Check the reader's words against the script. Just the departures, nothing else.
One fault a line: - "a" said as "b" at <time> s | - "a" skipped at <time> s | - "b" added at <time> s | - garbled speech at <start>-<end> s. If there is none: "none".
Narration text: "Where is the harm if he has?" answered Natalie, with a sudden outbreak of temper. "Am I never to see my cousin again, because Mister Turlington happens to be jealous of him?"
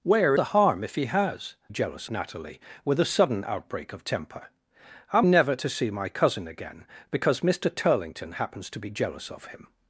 - "is" skipped at 0.3 s
- "answered" said as "jealous" at 1.7 s
- "I" skipped at 5.3 s